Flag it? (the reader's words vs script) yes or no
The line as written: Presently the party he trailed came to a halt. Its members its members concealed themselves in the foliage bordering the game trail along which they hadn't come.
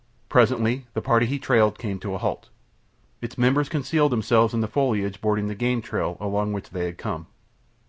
yes